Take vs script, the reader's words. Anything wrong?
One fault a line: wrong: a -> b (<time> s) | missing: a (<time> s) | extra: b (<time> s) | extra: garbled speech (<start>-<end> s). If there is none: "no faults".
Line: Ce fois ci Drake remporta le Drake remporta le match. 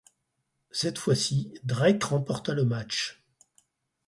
wrong: Ce -> Cette (0.7 s)
missing: Drake remporta le (2.6 s)